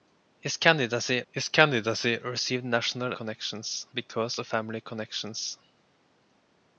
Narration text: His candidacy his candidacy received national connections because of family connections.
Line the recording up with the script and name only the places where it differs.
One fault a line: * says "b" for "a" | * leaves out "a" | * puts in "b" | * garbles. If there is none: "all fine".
all fine